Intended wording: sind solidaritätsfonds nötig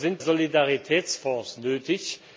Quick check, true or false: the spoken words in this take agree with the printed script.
true